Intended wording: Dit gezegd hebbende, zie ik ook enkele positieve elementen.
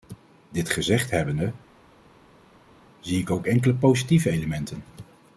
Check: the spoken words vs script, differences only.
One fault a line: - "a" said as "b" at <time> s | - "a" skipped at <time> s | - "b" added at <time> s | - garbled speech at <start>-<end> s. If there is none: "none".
none